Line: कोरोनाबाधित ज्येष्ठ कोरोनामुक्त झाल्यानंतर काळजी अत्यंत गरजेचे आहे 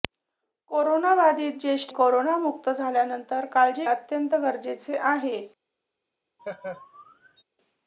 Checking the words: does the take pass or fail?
pass